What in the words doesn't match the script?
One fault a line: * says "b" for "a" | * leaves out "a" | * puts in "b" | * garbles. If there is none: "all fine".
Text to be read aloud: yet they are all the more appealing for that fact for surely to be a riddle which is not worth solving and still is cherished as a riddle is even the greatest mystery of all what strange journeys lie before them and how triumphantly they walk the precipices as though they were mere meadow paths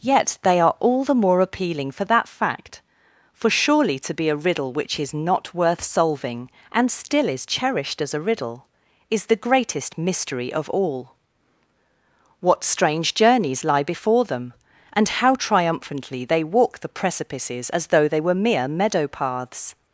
* leaves out "even"